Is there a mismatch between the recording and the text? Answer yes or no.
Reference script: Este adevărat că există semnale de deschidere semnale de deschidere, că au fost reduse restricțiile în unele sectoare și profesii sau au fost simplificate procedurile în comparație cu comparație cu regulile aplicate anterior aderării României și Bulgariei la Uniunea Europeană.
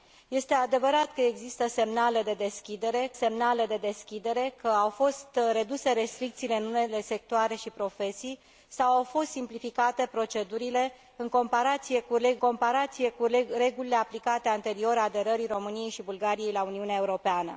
no